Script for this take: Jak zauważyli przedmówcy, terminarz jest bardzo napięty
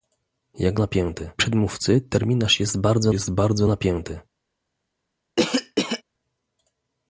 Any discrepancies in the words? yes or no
yes